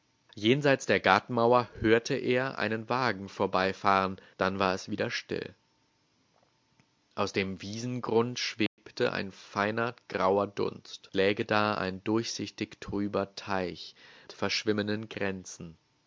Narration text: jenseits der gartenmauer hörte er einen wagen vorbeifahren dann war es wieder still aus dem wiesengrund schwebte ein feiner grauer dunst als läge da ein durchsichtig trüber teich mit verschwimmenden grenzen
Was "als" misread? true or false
true